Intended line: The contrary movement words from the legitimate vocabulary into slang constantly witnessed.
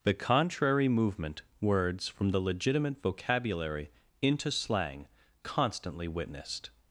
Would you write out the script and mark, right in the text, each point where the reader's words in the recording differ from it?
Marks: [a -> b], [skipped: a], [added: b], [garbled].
The contrary movement words from the legitimate vocabulary into slang constantly witnessed.